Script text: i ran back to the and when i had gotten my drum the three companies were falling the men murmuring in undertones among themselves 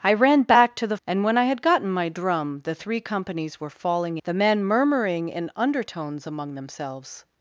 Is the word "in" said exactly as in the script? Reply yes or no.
yes